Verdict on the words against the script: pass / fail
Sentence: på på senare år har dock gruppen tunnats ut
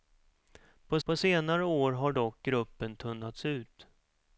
pass